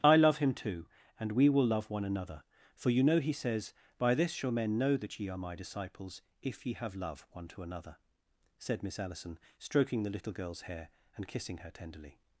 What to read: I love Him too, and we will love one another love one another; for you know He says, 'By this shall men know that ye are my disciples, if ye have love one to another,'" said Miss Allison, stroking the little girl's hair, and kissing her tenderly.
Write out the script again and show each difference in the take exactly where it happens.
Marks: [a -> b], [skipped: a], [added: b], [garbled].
I love Him too, and we will love one another [skipped: love one another;] for you know He says, 'By this shall men know that ye are my disciples, if ye have love one to another,'" said Miss Allison, stroking the little girl's hair, and kissing her tenderly.